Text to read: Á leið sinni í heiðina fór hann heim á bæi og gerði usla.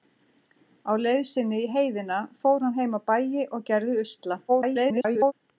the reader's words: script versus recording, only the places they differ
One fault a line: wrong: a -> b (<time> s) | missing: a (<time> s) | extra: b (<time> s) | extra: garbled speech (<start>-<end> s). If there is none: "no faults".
extra: garbled speech (4.5-5.3 s)